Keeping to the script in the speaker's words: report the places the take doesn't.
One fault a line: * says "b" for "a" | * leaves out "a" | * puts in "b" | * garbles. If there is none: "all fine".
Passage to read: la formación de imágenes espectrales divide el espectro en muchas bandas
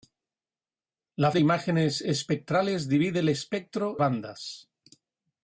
* leaves out "formación"
* leaves out "en muchas"